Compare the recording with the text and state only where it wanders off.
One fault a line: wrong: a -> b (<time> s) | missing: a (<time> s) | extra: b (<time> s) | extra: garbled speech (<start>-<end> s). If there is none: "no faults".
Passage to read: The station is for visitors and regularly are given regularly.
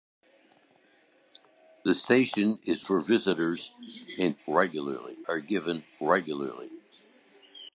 no faults